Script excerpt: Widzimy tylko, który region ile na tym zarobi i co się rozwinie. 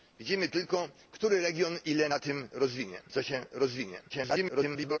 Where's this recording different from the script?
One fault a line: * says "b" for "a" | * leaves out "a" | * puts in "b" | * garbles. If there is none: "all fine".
* says "rozwinie" for "zarobi"
* garbles